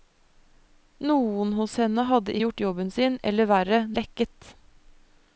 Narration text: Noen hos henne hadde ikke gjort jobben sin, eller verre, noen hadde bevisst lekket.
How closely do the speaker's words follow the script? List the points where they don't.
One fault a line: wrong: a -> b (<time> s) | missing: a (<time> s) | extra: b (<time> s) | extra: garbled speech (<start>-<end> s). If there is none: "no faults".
missing: ikke (2.4 s)
missing: noen hadde bevisst (3.8 s)